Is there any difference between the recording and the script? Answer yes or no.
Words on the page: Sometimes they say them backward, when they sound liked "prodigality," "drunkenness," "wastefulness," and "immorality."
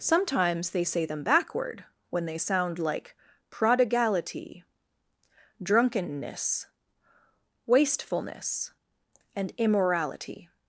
yes